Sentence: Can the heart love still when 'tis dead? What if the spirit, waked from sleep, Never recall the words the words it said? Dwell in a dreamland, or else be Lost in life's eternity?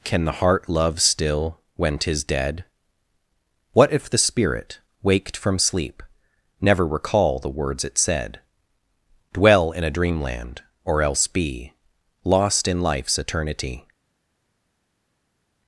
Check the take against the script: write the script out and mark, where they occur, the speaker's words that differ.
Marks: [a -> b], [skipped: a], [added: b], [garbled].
Can the heart love still when 'tis dead? What if the spirit, waked from sleep, Never recall the words [skipped: the words] it said? Dwell in a dreamland, or else be Lost in life's eternity?